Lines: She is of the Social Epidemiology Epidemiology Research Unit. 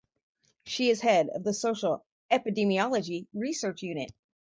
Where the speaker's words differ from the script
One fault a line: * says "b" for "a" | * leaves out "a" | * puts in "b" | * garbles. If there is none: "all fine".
* puts in "head"
* leaves out "Epidemiology"